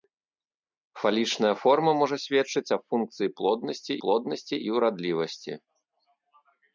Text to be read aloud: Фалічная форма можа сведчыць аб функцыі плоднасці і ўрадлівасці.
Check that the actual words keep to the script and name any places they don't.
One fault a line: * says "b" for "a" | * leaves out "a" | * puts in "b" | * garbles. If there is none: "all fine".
* puts in "плоднасці"